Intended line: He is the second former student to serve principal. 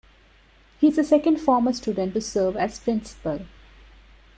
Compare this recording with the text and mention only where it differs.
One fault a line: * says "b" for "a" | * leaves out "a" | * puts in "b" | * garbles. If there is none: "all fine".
* puts in "as"